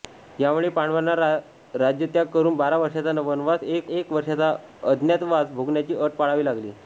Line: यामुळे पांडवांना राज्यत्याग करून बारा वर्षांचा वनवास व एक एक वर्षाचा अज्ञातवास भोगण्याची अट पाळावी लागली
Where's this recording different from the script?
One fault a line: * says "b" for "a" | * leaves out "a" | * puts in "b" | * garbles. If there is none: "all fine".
all fine